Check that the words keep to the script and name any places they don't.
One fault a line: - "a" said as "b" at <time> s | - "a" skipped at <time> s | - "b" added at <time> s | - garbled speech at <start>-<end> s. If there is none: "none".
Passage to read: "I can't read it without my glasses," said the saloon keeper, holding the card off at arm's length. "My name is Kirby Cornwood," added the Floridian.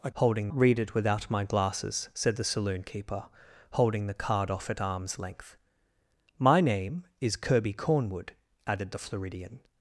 - "can't" said as "holding" at 0.2 s